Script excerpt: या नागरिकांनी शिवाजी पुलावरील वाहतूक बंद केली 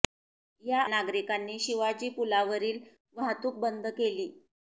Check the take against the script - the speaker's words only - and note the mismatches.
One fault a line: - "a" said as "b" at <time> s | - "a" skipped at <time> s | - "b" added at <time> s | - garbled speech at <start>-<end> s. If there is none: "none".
none